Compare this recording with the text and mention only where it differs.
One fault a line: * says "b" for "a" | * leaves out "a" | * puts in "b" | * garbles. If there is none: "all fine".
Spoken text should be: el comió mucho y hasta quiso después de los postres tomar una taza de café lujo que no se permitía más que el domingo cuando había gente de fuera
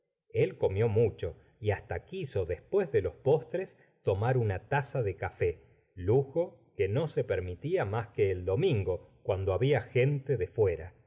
all fine